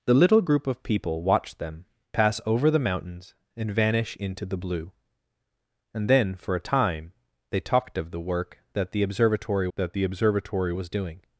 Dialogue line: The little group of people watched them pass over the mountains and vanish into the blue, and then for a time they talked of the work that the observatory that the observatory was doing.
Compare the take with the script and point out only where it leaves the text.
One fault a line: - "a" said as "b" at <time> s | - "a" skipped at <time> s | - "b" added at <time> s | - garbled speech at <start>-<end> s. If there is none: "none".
none